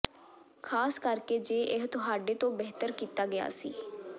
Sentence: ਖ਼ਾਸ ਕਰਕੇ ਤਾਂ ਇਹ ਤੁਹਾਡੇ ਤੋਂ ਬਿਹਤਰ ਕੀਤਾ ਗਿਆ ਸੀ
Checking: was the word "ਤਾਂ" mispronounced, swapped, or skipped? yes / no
yes